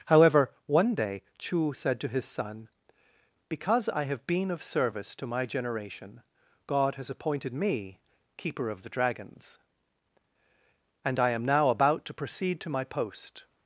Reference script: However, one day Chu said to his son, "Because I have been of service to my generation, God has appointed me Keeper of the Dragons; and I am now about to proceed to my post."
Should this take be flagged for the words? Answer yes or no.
no